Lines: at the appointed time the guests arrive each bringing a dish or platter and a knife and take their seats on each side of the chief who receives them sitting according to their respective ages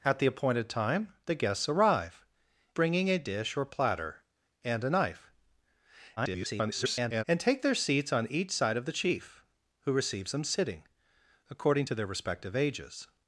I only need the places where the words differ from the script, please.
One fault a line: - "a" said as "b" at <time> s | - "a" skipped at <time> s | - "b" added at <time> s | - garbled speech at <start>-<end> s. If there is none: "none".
- "each" skipped at 2.2 s
- garbled speech at 6.2-7.2 s